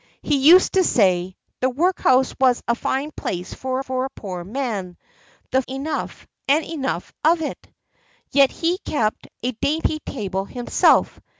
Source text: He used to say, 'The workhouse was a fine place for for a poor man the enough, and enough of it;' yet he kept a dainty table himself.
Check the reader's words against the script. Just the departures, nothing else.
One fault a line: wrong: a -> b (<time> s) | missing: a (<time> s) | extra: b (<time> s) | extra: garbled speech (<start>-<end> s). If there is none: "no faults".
no faults